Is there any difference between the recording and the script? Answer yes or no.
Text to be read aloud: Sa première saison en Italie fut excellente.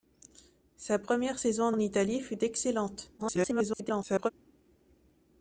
yes